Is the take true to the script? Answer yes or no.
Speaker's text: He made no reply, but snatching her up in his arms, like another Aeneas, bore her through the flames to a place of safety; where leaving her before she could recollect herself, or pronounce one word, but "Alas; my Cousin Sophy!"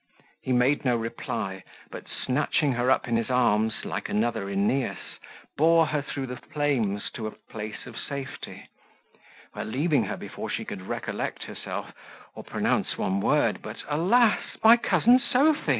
yes